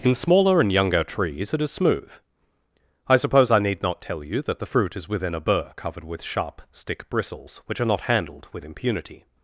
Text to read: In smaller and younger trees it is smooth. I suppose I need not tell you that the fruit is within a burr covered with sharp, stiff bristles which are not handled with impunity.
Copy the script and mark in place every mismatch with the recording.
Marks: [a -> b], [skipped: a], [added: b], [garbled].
In smaller and younger trees it is smooth. I suppose I need not tell you that the fruit is within a burr covered with sharp, [stiff -> stick] bristles which are not handled with impunity.